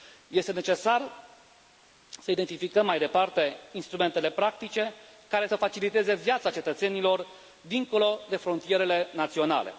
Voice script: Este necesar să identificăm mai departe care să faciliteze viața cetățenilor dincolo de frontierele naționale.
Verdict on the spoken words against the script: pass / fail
fail